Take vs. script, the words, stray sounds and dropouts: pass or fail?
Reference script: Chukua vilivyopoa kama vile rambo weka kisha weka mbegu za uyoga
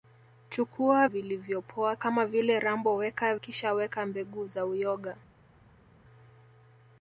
pass